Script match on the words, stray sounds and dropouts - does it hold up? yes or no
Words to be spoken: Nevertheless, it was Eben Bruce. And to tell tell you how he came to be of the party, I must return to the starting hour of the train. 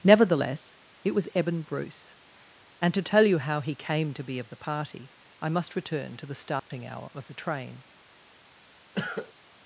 no